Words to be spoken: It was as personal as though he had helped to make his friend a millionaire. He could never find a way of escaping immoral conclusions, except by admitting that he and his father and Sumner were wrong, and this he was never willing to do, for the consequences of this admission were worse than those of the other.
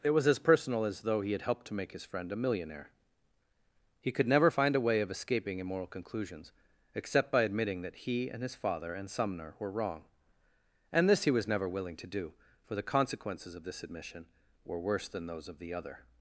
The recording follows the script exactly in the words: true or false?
true